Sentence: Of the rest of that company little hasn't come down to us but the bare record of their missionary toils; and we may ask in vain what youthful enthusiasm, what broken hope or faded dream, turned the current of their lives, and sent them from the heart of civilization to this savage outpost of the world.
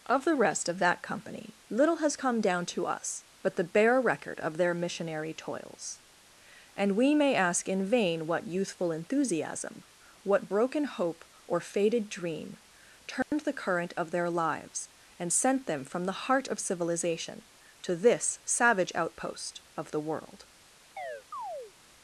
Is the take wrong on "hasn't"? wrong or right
wrong